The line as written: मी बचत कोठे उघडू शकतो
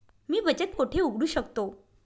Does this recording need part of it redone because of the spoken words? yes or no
no